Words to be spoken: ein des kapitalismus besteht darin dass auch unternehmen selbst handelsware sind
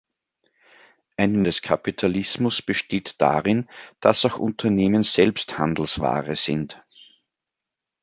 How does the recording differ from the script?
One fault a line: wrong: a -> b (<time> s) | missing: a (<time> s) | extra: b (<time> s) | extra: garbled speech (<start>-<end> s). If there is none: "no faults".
no faults